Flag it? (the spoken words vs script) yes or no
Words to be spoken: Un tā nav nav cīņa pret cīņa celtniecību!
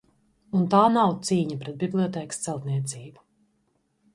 yes